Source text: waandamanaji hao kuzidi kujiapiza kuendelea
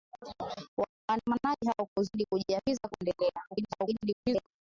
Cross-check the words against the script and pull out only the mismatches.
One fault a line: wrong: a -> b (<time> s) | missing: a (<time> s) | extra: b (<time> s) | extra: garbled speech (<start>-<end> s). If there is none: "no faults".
extra: garbled speech (3.5-4.5 s)